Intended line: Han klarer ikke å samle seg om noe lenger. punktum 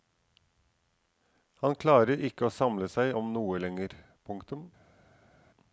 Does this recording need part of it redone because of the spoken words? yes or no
no